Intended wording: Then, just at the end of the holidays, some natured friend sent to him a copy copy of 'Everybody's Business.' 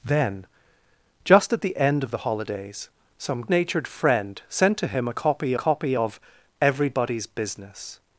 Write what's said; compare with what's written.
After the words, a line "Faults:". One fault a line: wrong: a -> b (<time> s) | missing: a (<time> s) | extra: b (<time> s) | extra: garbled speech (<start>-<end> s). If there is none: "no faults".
Then, just at the end of the holidays, some natured friend sent to him a copy copy of 'Everybody's Business.'
Faults:
no faults